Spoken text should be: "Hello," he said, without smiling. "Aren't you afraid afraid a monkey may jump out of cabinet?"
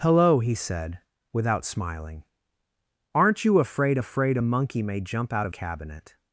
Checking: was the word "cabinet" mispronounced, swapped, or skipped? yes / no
no